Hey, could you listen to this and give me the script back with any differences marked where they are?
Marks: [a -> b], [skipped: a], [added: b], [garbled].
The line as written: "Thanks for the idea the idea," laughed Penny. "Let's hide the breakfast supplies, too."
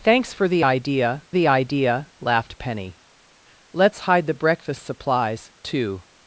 "Thanks for the idea the idea," laughed Penny. "Let's hide the breakfast supplies, too."